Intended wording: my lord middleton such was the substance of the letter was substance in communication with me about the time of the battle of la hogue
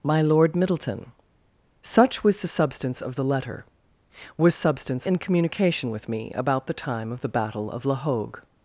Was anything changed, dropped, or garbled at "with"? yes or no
no